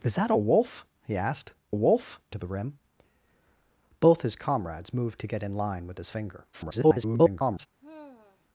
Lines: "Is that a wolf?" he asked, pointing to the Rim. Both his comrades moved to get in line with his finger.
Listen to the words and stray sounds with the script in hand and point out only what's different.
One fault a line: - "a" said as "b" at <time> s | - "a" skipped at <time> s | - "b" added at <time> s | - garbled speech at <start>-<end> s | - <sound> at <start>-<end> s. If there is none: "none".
- "pointing" said as "wolf" at 1.7 s
- garbled speech at 6.5-7.7 s
- sigh at 7.8-8.5 s